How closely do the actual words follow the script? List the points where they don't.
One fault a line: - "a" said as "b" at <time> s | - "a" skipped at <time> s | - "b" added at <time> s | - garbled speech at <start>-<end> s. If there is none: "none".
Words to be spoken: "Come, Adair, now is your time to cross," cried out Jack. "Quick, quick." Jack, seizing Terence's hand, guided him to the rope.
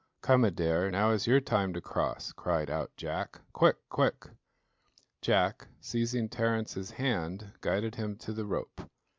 none